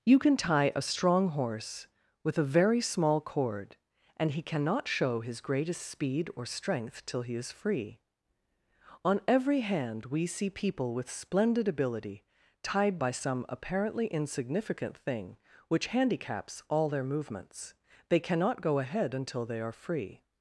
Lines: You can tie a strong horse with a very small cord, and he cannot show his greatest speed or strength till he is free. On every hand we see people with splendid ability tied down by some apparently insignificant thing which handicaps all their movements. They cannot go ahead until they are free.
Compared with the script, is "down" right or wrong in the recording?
wrong